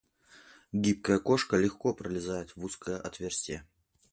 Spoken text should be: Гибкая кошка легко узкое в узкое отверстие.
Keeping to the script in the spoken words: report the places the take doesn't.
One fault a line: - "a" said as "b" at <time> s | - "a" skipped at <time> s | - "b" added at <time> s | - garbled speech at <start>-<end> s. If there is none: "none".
- "узкое" said as "пролезает" at 1.9 s